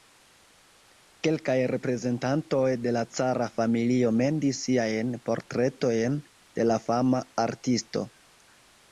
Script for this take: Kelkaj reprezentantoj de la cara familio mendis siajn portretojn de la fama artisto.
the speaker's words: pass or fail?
pass